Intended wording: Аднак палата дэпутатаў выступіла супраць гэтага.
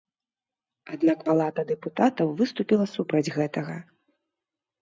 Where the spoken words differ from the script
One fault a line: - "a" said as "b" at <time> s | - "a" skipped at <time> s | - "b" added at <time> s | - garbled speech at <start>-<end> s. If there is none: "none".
none